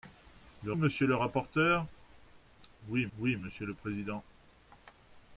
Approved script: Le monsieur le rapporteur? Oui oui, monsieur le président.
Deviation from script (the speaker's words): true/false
false